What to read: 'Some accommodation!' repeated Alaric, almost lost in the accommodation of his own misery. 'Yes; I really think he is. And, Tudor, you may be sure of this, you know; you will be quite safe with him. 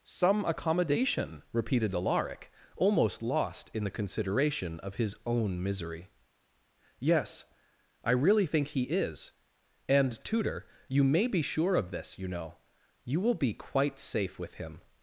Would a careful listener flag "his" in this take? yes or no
no